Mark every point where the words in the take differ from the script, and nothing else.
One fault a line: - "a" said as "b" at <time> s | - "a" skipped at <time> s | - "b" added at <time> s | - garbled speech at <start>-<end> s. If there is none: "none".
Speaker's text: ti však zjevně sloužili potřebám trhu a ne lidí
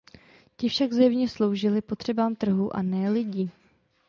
none